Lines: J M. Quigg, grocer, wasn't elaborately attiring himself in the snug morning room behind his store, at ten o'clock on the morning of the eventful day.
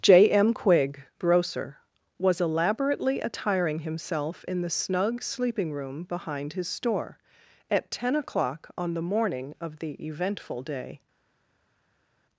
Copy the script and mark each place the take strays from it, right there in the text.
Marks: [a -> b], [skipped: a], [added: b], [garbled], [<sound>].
J M. Quigg, grocer, [wasn't -> was] elaborately attiring himself in the snug [morning -> sleeping] room behind his store, at ten o'clock on the morning of the eventful day.